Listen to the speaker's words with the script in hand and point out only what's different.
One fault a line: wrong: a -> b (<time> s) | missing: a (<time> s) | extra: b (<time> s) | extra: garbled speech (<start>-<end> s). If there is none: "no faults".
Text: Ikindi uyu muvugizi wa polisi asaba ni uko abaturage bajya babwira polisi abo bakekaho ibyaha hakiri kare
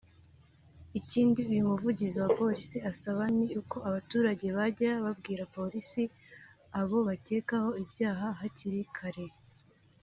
no faults